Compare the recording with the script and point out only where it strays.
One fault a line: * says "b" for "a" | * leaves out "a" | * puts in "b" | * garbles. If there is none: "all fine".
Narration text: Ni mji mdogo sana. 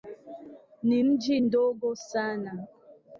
all fine